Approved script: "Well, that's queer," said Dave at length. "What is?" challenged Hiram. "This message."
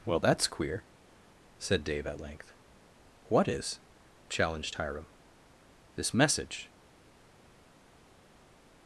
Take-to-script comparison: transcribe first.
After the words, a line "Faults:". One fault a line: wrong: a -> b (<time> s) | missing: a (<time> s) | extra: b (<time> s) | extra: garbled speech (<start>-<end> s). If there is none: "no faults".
"Well, that's queer," said Dave at length. "What is?" challenged Hiram. "This message."
Faults:
no faults